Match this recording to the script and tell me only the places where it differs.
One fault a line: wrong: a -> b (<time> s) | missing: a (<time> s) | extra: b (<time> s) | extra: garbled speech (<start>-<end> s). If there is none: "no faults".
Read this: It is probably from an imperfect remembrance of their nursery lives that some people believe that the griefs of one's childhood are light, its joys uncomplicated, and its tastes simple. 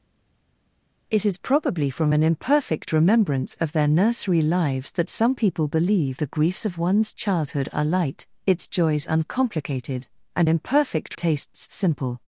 missing: that (6.2 s)
wrong: its -> imperfect (10.5 s)